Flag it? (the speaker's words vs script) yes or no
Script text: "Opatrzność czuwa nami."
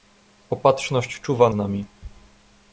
no